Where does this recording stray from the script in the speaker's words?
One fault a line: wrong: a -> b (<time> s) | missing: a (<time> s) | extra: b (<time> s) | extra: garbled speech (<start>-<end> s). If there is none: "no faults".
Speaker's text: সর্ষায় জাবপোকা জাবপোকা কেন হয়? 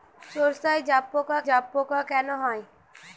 no faults